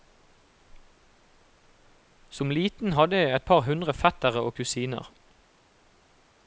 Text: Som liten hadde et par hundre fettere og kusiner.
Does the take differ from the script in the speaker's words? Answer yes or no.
yes